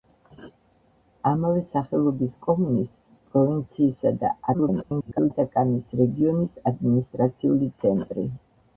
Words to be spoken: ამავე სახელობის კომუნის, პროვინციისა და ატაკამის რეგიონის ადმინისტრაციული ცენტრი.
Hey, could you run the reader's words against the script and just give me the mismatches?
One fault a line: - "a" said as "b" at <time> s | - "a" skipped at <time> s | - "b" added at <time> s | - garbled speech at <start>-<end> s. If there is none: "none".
- garbled speech at 4.5-5.3 s